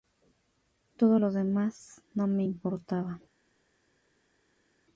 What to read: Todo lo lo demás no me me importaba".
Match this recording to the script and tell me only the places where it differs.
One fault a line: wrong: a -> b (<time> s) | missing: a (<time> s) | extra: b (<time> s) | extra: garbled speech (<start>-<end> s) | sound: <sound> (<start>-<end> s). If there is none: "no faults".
missing: lo (1.3 s)
missing: me (2.4 s)